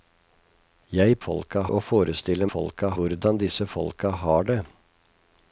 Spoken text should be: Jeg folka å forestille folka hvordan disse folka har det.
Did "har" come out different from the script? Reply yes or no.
no